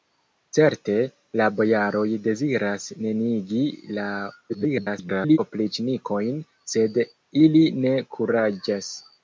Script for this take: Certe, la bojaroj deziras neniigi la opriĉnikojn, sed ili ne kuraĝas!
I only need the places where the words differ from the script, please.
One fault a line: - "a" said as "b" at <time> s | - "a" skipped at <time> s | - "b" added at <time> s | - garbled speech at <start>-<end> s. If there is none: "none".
- garbled speech at 4.5-5.4 s